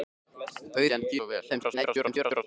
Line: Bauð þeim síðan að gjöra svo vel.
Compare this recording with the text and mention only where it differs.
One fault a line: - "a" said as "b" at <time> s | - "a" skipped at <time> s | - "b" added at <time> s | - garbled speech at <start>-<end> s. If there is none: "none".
- "þeim" skipped at 0.9 s
- "gjöra" skipped at 1.2 s
- garbled speech at 1.5-2.4 s